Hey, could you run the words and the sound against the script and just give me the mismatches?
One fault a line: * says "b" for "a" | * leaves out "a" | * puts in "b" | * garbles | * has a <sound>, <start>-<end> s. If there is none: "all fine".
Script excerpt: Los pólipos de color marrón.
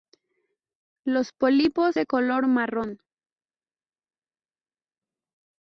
all fine